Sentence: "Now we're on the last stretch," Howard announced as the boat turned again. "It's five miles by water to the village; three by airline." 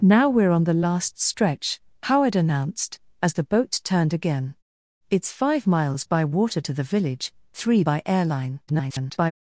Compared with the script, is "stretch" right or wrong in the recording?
right